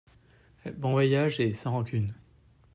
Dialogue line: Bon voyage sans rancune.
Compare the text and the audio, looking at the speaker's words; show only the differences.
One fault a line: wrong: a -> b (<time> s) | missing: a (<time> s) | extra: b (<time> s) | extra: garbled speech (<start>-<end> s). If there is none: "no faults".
extra: et (1.4 s)